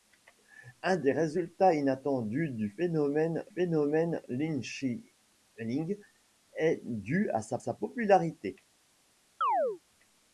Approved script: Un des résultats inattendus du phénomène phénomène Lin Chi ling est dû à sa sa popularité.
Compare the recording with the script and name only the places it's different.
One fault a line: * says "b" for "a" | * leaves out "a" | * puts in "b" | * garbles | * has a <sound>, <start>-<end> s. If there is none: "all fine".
* has a chirp, 9.4-9.8 s